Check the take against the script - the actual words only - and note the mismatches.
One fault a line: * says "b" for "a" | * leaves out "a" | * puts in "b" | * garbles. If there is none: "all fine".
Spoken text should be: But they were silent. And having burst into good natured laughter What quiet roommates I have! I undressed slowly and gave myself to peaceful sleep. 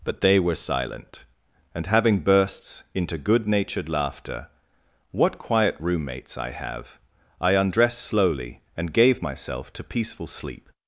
* says "bursts" for "burst"